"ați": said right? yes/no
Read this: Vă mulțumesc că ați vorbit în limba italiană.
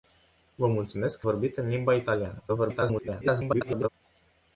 no